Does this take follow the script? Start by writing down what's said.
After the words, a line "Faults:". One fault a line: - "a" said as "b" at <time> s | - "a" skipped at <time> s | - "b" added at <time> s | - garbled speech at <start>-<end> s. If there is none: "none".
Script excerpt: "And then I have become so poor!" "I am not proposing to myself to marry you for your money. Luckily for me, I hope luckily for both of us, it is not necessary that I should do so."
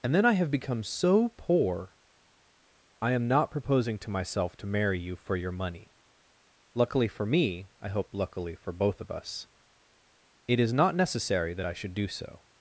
"And then I have become so poor!" "I am not proposing to myself to marry you for your money. Luckily for me, I hope luckily for both of us, it is not necessary that I should do so."
Faults:
none